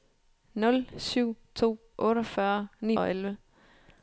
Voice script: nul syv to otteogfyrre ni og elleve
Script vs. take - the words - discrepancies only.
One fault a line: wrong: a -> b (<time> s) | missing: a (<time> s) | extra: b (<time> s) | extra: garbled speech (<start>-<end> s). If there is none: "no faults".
no faults